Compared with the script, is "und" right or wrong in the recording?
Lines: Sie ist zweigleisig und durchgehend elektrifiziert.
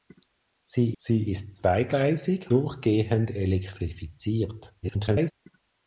wrong